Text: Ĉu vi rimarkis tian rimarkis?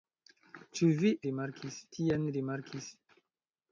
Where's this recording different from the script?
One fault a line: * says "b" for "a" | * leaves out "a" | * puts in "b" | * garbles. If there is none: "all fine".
all fine